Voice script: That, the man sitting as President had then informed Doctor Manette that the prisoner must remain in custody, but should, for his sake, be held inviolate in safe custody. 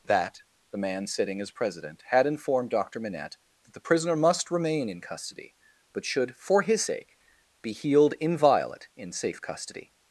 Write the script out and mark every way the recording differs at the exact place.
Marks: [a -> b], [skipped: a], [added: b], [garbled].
That, the man sitting as President had [skipped: then] informed Doctor Manette that the prisoner must remain in custody, but should, for his sake, be [held -> healed] inviolate in safe custody.